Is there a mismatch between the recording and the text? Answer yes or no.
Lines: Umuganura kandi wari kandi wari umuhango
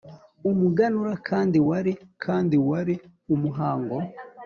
no